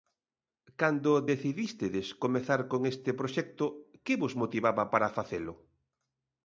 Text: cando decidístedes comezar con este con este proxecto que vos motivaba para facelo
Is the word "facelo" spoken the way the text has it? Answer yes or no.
yes